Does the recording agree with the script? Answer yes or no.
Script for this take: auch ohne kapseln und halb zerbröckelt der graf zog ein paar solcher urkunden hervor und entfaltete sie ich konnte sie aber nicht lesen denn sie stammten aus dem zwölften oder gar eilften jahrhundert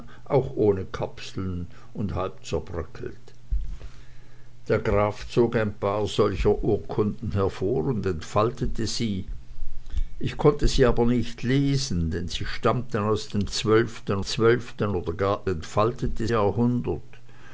no